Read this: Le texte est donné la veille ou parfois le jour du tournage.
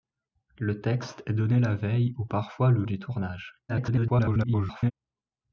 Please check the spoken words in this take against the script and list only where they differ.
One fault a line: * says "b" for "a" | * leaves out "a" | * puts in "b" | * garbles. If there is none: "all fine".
* leaves out "jour"
* garbles